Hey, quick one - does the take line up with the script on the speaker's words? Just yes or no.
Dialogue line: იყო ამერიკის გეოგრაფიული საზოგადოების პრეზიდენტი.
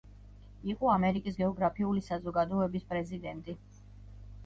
yes